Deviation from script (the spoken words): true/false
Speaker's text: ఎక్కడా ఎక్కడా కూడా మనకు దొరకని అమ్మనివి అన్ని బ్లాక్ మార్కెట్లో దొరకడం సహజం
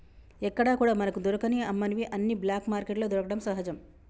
true